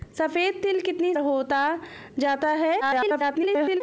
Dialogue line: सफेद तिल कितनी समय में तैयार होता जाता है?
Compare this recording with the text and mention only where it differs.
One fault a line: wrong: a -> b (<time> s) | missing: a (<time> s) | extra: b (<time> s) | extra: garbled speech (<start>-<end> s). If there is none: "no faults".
missing: समय में तैयार (1.1 s)
extra: garbled speech (2.8-3.8 s)